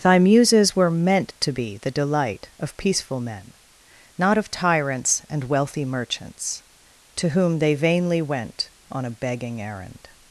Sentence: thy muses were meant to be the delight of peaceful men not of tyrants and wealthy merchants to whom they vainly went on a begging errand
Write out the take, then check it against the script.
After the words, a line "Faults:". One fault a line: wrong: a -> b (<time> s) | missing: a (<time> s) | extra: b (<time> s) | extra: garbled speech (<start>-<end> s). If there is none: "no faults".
thy muses were meant to be the delight of peaceful men not of tyrants and wealthy merchants to whom they vainly went on a begging errand
Faults:
no faults